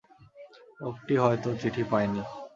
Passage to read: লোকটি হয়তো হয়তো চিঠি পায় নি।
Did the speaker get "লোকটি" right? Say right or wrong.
right